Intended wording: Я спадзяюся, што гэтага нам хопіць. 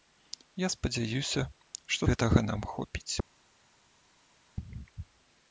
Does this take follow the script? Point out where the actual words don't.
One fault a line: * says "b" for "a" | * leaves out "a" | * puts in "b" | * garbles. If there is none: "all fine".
all fine